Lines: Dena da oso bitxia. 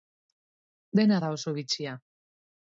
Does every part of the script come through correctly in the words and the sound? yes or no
yes